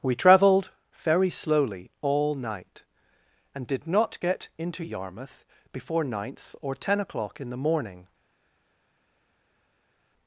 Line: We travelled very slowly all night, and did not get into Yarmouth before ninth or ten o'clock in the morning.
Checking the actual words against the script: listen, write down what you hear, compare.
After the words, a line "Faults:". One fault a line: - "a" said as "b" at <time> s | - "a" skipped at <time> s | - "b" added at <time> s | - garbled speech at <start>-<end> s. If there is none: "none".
We travelled very slowly all night, and did not get into Yarmouth before ninth or ten o'clock in the morning.
Faults:
none